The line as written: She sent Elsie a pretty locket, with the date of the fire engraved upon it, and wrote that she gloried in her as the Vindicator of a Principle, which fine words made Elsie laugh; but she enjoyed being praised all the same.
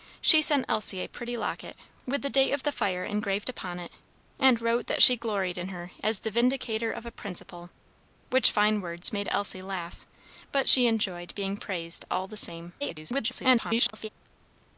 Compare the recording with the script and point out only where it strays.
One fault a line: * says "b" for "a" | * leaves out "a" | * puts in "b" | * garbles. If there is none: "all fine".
* garbles